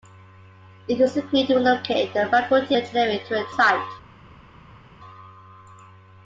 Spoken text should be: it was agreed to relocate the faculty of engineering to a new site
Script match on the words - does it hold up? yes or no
no